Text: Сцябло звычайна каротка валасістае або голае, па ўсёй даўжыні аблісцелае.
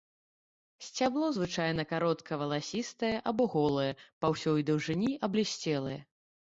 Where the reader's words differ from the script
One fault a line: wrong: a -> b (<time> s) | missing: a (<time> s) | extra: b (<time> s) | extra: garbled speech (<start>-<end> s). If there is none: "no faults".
no faults